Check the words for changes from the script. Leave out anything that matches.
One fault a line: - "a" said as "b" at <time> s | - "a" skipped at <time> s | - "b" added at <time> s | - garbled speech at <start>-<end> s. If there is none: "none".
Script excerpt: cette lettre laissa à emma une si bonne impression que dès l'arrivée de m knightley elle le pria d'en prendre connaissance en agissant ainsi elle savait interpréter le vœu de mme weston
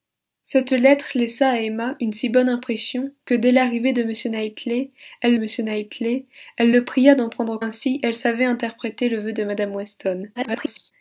- "m knightley elle" added at 5.3 s
- "connaissance en agissant" skipped at 7.6 s
- garbled speech at 10.4-10.9 s